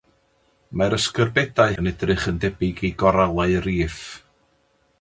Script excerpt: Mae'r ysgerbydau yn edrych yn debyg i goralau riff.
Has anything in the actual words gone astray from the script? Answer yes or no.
no